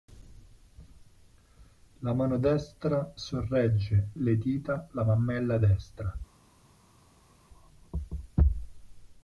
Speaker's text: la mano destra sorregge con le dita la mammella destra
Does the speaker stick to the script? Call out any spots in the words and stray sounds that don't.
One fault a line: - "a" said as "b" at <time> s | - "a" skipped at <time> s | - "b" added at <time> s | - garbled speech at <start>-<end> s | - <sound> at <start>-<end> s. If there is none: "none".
- "con" skipped at 4.1 s